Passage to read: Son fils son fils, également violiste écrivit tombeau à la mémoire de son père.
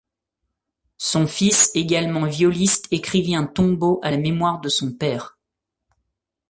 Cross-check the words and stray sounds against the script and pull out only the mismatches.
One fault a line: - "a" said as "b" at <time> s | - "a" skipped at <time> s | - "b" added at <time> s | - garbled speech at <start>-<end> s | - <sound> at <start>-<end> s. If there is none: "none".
- "son fils" skipped at 1.7 s
- "un" added at 3.4 s